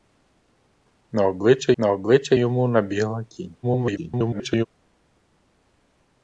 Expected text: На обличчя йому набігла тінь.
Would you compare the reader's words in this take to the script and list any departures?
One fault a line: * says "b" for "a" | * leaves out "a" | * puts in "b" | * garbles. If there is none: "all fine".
* puts in "на обличчя"
* garbles